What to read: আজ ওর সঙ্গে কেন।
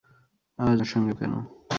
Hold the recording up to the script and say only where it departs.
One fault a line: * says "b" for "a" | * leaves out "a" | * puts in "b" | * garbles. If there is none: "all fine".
all fine